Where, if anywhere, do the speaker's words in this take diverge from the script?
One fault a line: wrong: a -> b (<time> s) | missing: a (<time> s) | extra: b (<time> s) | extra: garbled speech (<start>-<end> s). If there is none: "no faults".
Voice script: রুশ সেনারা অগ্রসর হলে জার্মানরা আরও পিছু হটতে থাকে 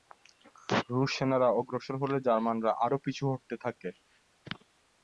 no faults